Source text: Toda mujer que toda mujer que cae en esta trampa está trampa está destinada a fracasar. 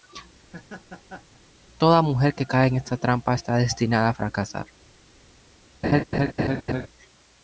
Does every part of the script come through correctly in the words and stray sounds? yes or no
no